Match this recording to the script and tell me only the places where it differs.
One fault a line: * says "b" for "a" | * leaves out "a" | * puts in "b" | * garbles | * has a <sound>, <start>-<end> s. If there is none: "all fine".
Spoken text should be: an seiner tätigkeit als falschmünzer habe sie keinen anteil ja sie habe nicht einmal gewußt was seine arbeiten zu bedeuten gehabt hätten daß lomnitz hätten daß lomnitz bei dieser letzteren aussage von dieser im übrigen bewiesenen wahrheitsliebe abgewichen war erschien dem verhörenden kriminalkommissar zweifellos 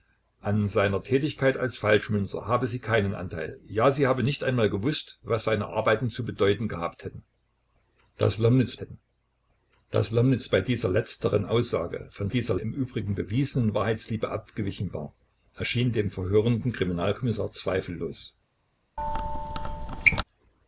* has a squeak, 19.0-20.2 s